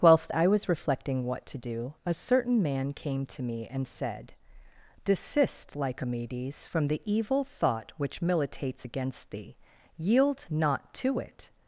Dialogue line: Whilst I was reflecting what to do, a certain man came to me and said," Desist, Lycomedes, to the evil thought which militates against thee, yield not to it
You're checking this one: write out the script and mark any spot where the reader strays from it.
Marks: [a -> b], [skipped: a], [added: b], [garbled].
Whilst I was reflecting what to do, a certain man came to me and said," Desist, Lycomedes, [to -> from] the evil thought which militates against thee, yield not to it